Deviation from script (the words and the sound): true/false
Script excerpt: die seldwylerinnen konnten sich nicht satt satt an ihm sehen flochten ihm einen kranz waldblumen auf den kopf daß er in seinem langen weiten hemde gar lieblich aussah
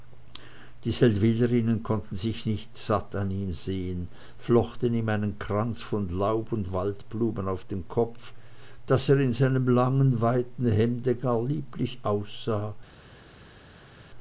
true